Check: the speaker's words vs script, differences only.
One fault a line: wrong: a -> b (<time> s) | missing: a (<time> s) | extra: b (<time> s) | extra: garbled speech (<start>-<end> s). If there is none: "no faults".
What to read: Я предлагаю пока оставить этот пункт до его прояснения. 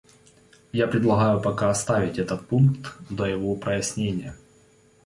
no faults